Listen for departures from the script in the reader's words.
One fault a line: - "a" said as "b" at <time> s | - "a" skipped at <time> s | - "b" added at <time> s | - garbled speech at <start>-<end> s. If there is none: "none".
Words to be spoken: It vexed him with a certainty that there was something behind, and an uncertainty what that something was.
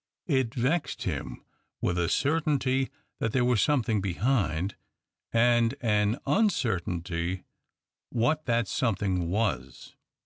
none